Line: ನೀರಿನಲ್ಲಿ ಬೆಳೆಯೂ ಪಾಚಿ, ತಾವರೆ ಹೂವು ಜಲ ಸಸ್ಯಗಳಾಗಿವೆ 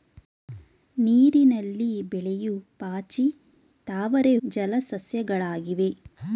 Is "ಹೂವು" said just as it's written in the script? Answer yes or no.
no